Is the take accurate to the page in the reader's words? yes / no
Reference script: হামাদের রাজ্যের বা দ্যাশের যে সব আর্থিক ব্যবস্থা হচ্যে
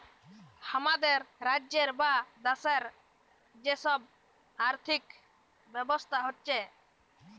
yes